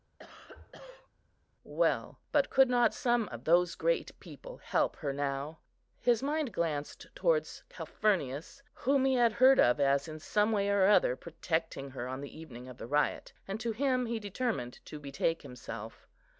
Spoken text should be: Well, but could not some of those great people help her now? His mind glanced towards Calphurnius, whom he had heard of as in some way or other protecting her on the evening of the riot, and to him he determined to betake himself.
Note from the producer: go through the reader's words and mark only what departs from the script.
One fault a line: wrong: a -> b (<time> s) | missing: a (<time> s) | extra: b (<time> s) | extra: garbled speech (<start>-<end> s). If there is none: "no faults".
no faults